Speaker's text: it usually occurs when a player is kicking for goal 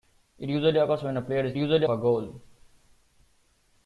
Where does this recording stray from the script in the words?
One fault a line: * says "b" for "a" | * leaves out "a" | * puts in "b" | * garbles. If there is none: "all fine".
* says "usually" for "kicking"